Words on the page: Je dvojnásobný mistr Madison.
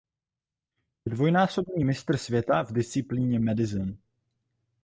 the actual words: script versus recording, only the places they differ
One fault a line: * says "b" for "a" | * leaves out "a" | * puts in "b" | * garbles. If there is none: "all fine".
* puts in "světa v disciplíně"